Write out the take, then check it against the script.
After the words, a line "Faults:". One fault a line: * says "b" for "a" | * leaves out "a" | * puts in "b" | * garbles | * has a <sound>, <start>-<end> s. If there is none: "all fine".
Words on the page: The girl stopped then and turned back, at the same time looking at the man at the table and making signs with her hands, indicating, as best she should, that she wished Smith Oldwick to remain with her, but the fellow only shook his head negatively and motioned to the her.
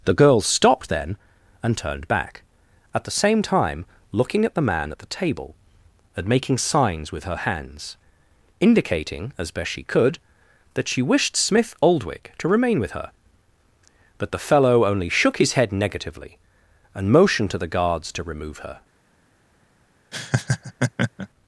The girl stopped then and turned back, at the same time looking at the man at the table and making signs with her hands, indicating, as best she could, that she wished Smith Oldwick to remain with her, but the fellow only shook his head negatively and motioned to the guards to remove her.
Faults:
* says "could" for "should"
* puts in "guards to remove"
* has a laugh, 20.1-21.3 s